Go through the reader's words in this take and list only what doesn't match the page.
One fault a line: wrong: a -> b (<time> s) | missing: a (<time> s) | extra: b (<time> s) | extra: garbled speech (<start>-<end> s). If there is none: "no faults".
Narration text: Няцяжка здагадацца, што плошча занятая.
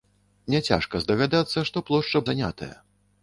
no faults